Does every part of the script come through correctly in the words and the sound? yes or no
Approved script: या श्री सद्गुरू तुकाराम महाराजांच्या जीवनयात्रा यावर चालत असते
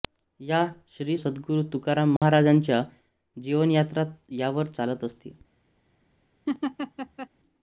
no